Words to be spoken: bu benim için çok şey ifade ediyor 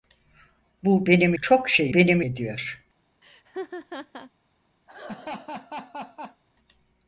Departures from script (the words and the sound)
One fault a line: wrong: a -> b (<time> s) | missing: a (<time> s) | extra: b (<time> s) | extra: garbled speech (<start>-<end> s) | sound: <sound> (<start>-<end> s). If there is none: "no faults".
missing: için (1.3 s)
wrong: ifade -> benim (1.9 s)
sound: laugh (3.2-4.3 s)
sound: laugh (4.9-6.4 s)